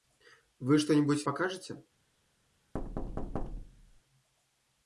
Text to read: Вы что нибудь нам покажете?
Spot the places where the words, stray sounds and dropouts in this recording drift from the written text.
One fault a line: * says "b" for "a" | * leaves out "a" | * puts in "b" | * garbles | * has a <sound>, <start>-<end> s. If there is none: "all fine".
* leaves out "нам"
* has a thud, 2.7-4.0 s